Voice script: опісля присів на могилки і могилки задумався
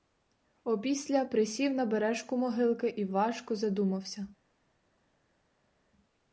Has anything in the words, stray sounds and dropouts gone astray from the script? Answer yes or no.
yes